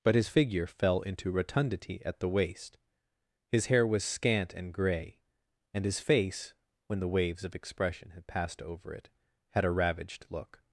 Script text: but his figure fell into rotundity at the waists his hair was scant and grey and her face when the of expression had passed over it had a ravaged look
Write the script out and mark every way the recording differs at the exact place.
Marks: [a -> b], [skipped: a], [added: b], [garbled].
but his figure fell into rotundity at the [waists -> waist] his hair was scant and grey and [her -> his] face when the [added: waves] of expression had passed over it had a ravaged look